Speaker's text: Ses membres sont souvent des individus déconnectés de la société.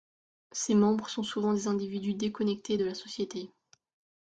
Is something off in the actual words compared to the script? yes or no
no